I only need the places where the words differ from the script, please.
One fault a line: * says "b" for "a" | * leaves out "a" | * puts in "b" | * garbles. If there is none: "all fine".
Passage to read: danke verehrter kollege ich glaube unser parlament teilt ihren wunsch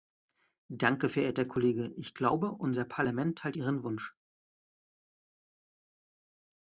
all fine